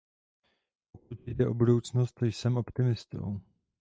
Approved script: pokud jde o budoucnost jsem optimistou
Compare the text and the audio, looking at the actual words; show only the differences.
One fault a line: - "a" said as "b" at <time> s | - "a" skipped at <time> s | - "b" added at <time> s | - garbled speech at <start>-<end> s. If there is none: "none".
none